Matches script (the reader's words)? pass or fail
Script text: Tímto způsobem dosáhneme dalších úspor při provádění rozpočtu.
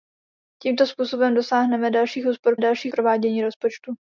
fail